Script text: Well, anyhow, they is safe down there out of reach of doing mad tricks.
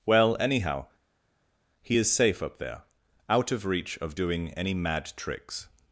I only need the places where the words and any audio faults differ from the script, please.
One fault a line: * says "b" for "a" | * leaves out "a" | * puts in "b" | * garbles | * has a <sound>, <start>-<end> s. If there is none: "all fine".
* says "he" for "they"
* says "up" for "down"
* puts in "any"